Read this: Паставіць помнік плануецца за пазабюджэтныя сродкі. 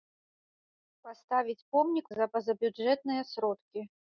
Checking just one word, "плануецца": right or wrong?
wrong